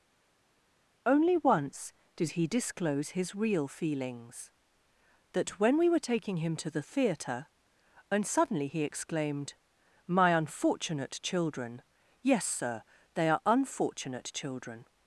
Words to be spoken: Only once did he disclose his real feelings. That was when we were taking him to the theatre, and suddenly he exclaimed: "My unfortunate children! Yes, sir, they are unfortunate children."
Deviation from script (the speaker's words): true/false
true